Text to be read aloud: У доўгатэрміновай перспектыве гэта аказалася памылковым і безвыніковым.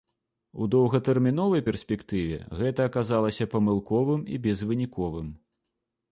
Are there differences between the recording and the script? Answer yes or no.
no